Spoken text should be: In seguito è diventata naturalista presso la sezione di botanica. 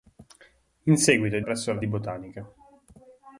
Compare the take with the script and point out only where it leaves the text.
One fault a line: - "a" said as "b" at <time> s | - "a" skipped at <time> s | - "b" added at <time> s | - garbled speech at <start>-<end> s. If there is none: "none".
- "diventata naturalista" skipped at 1.4 s
- "sezione" skipped at 1.8 s